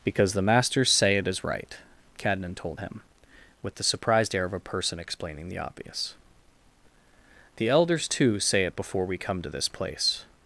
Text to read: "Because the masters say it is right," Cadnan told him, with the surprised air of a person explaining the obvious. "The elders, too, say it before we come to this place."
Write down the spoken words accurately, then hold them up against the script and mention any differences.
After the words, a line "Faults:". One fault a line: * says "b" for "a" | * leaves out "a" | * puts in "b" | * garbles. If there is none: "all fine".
"Because the masters say it is right," Cadnan told him, with the surprised air of a person explaining the obvious. "The elders, too, say it before we come to this place."
Faults:
all fine